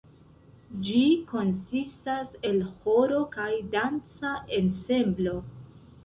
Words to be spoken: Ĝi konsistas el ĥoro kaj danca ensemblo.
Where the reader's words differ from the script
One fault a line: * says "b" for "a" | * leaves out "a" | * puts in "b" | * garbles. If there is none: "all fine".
all fine